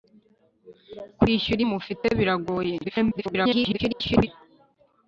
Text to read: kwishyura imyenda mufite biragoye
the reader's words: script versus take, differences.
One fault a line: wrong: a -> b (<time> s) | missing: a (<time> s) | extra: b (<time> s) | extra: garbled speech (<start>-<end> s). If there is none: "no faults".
missing: imyenda (1.6 s)
extra: garbled speech (2.8-4.3 s)